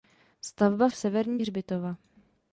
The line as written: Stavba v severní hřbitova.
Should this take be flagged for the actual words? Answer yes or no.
no